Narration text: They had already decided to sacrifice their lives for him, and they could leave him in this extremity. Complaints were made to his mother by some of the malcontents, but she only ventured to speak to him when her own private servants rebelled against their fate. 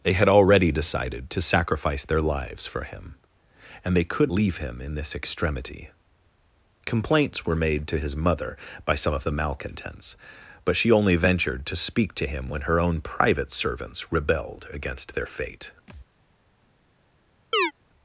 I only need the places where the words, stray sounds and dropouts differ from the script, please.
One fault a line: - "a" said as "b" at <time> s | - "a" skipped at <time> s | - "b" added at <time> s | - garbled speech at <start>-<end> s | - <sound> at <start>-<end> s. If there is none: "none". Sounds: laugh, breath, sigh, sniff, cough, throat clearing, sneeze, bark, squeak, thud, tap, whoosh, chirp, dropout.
- thud at 15.9-16.1 s
- chirp at 17.5-17.7 s